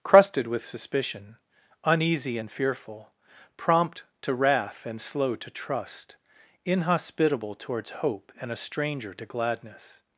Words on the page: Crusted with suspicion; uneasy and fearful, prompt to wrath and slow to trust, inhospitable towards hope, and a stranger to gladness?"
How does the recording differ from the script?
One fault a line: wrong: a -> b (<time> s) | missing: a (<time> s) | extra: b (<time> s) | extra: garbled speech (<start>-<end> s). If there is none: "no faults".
no faults